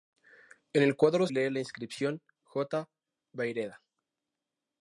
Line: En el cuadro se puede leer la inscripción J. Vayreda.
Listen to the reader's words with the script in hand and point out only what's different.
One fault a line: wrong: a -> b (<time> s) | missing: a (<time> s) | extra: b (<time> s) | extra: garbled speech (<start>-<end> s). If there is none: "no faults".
missing: se puede (1.3 s)